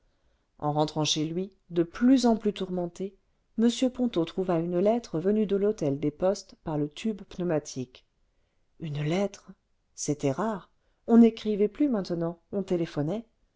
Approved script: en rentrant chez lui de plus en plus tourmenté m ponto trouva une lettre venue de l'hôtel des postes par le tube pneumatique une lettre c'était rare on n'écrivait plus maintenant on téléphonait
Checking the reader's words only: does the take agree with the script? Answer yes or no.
yes